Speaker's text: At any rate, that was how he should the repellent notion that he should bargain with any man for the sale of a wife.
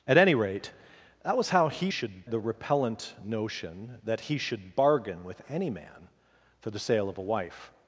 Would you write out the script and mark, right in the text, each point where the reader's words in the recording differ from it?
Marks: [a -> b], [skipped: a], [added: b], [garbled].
At any rate, that was how he should the repellent notion that he should bargain with any man for the sale of a wife.